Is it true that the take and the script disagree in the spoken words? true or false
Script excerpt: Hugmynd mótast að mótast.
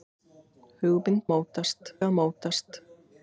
false